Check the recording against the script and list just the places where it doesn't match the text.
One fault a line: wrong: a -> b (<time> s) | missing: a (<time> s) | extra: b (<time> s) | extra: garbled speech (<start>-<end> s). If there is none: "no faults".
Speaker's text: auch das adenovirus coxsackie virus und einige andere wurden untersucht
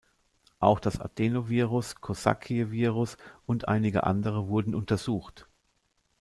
no faults